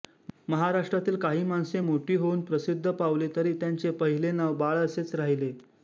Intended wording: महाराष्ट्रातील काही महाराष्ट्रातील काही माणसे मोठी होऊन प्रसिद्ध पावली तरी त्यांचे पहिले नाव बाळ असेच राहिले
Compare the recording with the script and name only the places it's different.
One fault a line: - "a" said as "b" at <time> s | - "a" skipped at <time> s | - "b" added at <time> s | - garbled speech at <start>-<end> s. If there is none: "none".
- "महाराष्ट्रातील काही" skipped at 1.4 s